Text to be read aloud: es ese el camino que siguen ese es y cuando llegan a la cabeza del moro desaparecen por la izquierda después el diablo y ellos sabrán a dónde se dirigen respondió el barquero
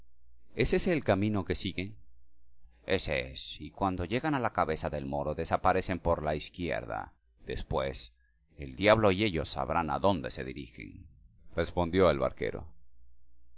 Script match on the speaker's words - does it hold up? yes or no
yes